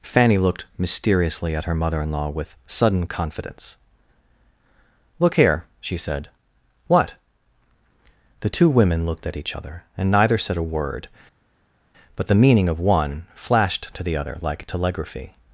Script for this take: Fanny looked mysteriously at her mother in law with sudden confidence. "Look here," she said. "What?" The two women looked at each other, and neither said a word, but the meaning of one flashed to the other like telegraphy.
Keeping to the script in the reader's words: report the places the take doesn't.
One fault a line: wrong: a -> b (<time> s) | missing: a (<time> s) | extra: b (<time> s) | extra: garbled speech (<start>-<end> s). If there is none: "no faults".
no faults